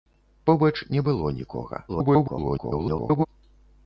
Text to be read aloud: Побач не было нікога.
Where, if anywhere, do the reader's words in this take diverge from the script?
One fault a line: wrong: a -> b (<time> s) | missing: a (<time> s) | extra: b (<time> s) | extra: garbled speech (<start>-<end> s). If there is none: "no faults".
extra: garbled speech (1.9-3.3 s)